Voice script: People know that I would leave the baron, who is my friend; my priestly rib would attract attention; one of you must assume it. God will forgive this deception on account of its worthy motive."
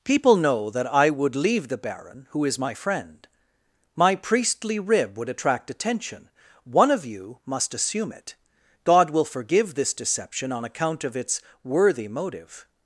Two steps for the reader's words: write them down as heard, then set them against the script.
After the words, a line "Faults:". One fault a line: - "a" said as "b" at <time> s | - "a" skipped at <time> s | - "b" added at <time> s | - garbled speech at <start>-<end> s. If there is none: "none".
People know that I would leave the baron, who is my friend; my priestly rib would attract attention; one of you must assume it. God will forgive this deception on account of its worthy motive."
Faults:
none